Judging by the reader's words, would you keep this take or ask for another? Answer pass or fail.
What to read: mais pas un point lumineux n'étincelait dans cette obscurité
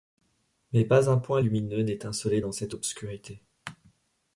pass